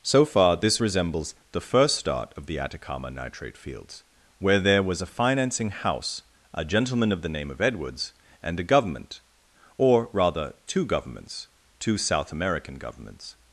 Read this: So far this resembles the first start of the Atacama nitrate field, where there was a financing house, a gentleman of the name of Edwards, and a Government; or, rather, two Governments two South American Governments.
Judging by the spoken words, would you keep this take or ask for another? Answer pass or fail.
fail